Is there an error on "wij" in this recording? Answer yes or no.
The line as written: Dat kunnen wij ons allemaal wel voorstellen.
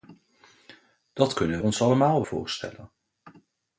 yes